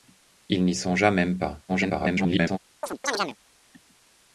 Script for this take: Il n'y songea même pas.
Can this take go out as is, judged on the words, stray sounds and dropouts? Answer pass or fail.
fail